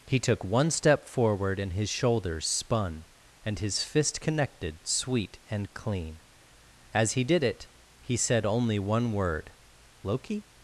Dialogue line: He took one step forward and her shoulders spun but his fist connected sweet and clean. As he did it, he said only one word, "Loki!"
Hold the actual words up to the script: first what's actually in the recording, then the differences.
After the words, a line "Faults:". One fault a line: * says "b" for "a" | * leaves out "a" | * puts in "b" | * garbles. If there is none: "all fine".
He took one step forward and his shoulders spun and his fist connected sweet and clean. As he did it, he said only one word, "Loki!"
Faults:
* says "his" for "her"
* says "and" for "but"